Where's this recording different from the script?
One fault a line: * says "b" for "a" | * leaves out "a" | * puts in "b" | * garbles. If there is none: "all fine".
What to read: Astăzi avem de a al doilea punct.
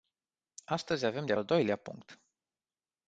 all fine